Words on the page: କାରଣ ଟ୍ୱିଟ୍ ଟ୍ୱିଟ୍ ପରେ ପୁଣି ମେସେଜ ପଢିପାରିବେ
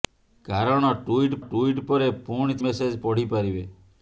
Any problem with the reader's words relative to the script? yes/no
no